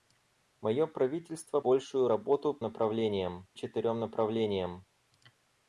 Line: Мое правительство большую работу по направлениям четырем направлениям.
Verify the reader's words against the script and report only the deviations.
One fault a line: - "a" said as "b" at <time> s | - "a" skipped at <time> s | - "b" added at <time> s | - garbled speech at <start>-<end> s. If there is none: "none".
none